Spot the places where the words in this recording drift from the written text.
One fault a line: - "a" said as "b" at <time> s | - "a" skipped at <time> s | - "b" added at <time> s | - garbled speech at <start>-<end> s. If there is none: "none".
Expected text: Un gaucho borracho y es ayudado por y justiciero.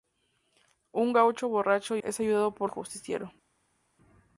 none